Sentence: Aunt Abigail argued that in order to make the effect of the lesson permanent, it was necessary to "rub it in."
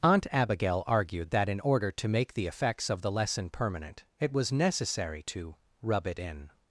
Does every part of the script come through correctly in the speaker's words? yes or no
no